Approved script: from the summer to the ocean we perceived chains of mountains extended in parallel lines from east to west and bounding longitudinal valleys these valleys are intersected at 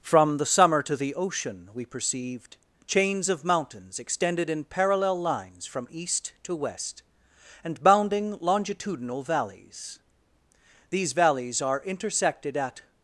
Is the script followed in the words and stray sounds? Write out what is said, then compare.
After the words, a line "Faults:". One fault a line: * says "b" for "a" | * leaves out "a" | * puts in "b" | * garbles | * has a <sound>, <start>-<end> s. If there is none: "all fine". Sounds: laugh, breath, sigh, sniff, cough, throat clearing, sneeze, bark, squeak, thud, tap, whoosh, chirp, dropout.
from the summer to the ocean we perceived chains of mountains extended in parallel lines from east to west and bounding longitudinal valleys these valleys are intersected at
Faults:
all fine